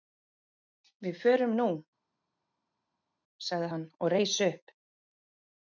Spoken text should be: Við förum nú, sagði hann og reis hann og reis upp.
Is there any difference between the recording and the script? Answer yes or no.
yes